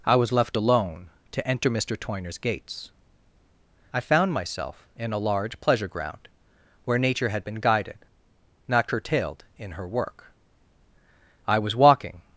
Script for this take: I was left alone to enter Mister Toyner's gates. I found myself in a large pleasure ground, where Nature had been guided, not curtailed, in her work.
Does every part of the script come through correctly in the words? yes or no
no